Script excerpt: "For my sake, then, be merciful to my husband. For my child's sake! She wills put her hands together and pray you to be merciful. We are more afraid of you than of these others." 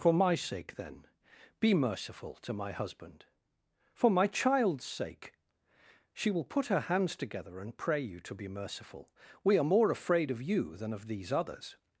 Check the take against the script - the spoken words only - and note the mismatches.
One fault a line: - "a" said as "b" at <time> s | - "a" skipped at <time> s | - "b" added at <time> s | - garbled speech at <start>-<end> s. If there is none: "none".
- "wills" said as "will" at 6.3 s